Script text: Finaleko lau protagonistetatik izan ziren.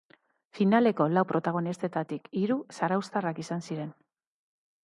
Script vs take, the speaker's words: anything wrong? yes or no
yes